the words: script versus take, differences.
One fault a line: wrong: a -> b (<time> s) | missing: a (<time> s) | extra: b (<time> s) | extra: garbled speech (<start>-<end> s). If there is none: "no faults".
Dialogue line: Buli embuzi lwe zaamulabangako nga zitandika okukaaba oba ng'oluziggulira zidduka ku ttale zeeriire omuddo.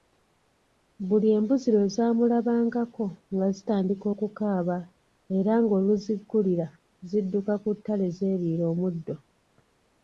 wrong: oba -> era (5.4 s)